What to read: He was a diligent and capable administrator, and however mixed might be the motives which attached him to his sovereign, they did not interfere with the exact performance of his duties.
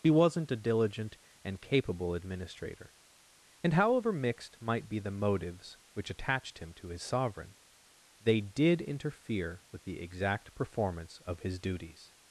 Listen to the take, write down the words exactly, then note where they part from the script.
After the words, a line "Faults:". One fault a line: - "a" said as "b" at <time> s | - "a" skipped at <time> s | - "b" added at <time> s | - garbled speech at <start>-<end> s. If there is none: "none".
He wasn't a diligent and capable administrator, and however mixed might be the motives which attached him to his sovereign, they did interfere with the exact performance of his duties.
Faults:
- "was" said as "wasn't" at 0.1 s
- "not" skipped at 8.8 s